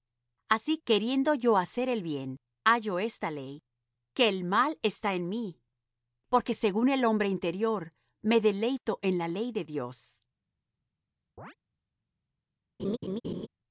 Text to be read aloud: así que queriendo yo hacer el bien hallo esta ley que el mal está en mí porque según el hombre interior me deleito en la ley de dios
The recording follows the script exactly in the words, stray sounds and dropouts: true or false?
false